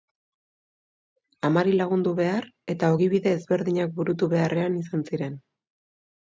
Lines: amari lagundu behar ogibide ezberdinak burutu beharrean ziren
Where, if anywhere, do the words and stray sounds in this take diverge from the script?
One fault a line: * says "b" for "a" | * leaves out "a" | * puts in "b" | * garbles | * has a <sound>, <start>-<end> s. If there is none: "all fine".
* puts in "eta"
* puts in "izan"